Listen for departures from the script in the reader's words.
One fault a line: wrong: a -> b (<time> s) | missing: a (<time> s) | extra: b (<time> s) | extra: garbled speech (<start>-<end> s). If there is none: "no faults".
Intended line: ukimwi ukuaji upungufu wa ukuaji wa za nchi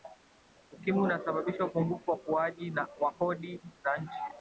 wrong: ukuaji -> unasababisha (1.0 s)
extra: kodi (3.1 s)